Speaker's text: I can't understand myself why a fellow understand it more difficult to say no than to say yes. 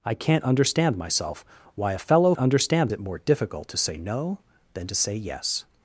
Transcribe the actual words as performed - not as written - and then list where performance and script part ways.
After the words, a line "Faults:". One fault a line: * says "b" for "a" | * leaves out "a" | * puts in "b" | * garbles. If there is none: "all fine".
I can't understand myself why a fellow understand it more difficult to say no than to say yes.
Faults:
all fine